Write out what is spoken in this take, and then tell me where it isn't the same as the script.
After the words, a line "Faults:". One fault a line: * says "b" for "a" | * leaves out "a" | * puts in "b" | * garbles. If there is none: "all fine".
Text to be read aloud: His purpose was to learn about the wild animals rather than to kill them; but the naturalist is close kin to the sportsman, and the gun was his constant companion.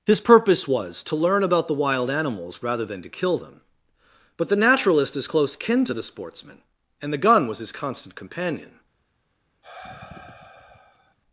His purpose was to learn about the wild animals rather than to kill them; but the naturalist is close kin to the sportsman, and the gun was his constant companion.
Faults:
all fine